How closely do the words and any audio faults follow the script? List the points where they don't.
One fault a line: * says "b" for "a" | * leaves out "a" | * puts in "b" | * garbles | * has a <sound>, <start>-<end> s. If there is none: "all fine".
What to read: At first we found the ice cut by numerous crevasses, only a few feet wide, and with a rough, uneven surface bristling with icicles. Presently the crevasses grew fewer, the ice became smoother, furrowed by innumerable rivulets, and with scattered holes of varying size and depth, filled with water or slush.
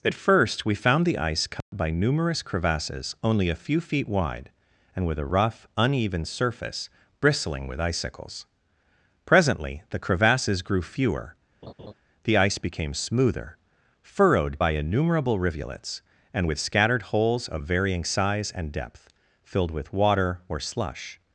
* has a dropout, 1.6-1.7 s
* has a laugh, 11.6-11.9 s